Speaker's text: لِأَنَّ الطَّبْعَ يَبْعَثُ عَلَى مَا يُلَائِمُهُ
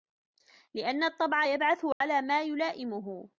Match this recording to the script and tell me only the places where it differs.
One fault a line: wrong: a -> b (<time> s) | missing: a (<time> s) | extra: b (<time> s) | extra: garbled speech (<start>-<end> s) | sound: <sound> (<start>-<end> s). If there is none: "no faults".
sound: dropout (1.9-2.0 s)